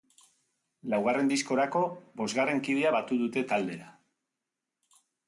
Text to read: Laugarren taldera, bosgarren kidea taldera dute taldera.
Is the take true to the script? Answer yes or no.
no